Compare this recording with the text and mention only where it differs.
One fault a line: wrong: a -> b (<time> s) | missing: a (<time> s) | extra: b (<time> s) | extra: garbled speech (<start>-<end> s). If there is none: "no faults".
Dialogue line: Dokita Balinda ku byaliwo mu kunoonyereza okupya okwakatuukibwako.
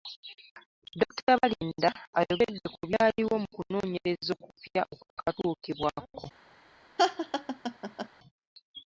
extra: ayogedde (2.2 s)